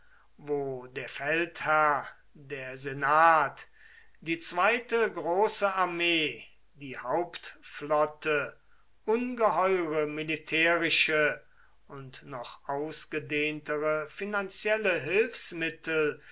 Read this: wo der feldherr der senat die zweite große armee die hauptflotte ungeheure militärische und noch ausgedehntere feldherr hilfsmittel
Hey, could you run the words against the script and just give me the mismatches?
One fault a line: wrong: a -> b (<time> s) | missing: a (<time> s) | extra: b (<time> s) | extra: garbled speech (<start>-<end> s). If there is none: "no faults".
wrong: feldherr -> finanzielle (14.1 s)